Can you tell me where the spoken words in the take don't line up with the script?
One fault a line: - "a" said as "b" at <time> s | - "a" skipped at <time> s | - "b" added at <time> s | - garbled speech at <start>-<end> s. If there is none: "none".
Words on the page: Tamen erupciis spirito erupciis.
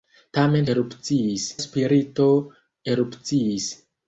none